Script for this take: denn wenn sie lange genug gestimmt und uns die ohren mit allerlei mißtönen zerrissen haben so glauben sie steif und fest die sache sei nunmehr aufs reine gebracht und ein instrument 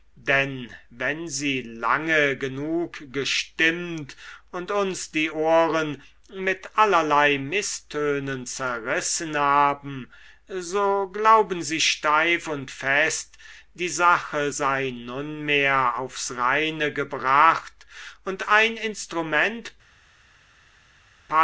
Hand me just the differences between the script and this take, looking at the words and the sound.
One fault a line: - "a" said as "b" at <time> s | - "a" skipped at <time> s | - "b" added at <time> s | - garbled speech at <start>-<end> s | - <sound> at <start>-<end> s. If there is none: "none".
none